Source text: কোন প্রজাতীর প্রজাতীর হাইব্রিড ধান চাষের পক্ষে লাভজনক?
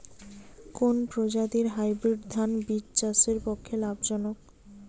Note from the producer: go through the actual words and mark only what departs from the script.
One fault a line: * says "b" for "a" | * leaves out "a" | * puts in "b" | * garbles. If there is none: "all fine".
* leaves out "প্রজাতীর"
* puts in "বীজ"